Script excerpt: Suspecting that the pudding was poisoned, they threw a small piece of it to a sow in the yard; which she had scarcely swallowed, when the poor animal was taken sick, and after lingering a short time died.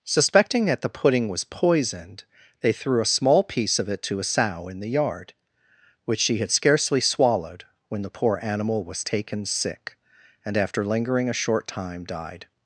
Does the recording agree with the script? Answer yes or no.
yes